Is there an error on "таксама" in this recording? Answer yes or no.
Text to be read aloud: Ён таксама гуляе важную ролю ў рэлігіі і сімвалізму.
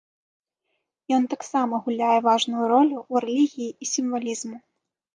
no